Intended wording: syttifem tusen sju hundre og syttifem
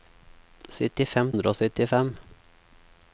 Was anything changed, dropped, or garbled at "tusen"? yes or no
yes